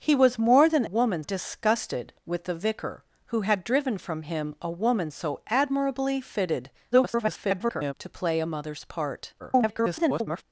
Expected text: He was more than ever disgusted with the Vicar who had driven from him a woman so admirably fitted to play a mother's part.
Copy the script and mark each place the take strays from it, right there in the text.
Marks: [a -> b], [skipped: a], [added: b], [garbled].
He was more than [ever -> woman] disgusted with the Vicar who had driven from him a woman so admirably fitted [garbled] to play a mother's part. [garbled]